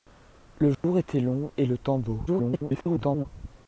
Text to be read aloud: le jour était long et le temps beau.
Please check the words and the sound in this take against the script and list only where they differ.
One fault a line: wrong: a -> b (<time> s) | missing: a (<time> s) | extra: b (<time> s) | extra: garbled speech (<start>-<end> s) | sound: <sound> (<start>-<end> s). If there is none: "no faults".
sound: dropout (0.7-0.8 s)
extra: garbled speech (2.3-3.3 s)